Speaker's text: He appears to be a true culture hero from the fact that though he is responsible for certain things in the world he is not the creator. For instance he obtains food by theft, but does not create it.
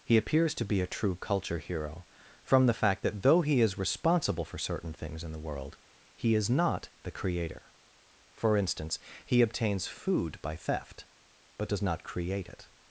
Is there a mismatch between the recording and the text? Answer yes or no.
no